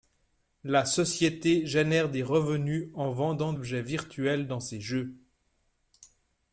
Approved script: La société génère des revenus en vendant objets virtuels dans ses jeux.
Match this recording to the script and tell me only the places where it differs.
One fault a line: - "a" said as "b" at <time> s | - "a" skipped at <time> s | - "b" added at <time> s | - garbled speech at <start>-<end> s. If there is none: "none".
none